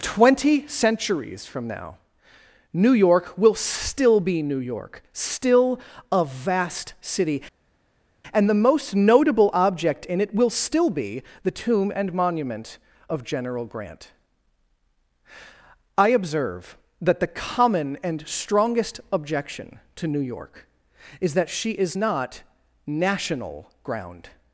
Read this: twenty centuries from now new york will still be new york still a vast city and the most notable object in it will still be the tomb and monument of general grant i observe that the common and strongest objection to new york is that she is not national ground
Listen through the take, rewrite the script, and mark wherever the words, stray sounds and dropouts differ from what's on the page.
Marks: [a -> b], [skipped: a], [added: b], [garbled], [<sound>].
twenty centuries from now new york will still be new york still a vast city and the most notable object in it will still be the tomb and monument of general grant i observe that the common and strongest objection to new york is that she is not national ground